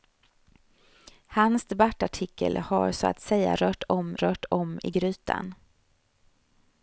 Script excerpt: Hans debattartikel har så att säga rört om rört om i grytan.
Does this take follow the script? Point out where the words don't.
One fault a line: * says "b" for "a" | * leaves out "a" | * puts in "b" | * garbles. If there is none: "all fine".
all fine